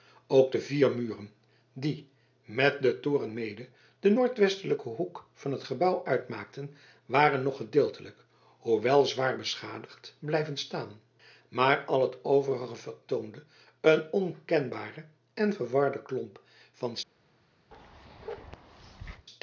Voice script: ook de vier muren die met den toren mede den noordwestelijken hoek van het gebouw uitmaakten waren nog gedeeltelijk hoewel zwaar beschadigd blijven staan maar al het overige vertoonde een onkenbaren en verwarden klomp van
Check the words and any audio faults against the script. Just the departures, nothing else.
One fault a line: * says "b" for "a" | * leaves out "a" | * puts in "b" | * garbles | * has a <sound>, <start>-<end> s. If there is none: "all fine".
* has a bark, 17.7-19.3 s